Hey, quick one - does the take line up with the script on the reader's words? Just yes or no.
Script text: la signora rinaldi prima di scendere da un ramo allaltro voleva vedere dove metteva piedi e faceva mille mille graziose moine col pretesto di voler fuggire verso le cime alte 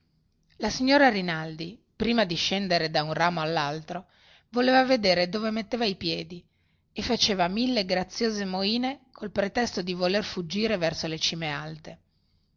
no